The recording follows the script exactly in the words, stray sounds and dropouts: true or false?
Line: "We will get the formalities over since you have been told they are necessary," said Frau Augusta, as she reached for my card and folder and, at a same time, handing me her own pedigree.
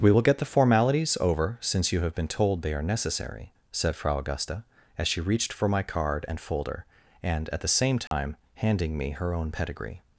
false